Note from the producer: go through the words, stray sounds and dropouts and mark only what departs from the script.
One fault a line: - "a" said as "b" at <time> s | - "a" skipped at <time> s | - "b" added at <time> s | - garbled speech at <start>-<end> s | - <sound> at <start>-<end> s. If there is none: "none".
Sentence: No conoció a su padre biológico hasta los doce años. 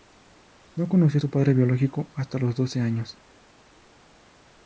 none